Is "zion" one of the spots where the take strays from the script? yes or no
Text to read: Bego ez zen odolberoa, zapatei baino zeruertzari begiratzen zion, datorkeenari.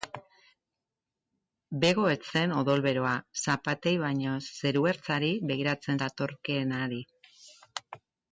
yes